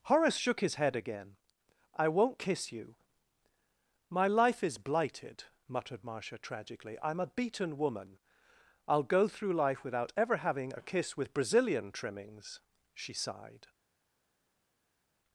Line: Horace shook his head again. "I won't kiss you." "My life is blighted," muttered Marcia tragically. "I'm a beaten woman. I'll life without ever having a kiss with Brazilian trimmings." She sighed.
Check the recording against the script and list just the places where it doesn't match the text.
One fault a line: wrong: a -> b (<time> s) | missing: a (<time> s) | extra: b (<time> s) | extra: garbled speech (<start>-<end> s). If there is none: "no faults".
extra: go through (9.0 s)